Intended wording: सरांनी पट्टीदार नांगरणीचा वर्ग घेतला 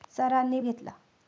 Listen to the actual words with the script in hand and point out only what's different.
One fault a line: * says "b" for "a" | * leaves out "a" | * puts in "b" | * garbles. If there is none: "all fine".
* leaves out "पट्टीदार नांगरणीचा वर्ग"